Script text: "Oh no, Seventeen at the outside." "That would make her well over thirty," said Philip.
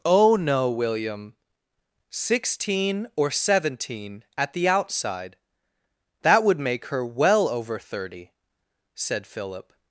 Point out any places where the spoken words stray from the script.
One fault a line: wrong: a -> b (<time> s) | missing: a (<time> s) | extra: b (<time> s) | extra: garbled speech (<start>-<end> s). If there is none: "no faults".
extra: William Sixteen or (0.7 s)